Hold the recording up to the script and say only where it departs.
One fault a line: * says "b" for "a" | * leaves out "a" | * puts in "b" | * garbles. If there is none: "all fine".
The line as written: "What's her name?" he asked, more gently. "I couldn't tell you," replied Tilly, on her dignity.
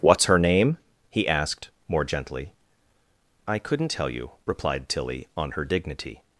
all fine